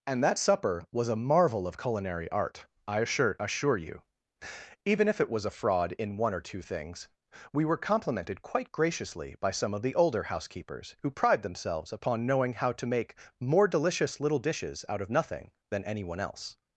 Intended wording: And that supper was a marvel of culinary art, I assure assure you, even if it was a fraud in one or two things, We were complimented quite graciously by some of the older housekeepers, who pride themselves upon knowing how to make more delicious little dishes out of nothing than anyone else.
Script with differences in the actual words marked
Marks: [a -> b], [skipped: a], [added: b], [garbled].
And that supper was a marvel of culinary art, I assure assure you, even if it was a fraud in one or two things, We were complimented quite graciously by some of the older housekeepers, who pride themselves upon knowing how to make more delicious little dishes out of nothing than anyone else.